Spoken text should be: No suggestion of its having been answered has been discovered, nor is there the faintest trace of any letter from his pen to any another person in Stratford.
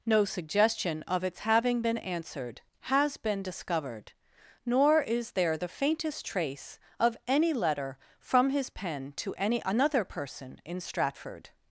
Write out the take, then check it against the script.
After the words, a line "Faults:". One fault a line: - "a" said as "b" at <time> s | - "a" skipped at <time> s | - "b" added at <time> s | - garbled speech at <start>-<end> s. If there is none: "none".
No suggestion of its having been answered has been discovered, nor is there the faintest trace of any letter from his pen to any another person in Stratford.
Faults:
none